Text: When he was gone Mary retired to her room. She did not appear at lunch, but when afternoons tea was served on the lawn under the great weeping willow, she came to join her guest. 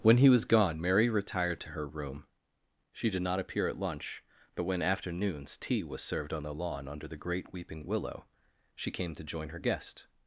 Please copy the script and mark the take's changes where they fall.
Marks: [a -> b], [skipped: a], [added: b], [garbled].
When he was gone Mary retired to her room. She did not appear at lunch, but when afternoons tea was served on the lawn under the great weeping willow, she came to join her guest.